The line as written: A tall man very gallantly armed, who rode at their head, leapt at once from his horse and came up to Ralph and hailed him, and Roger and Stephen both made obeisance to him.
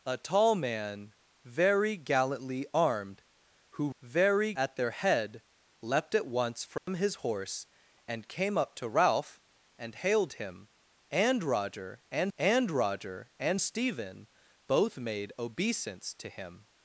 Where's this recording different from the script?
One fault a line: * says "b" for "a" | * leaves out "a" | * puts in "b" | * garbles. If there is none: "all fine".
* says "very" for "rode"
* puts in "and Roger and"